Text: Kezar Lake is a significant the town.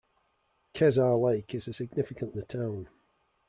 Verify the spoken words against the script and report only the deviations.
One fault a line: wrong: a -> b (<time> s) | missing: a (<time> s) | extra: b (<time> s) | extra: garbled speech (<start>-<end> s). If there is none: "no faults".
no faults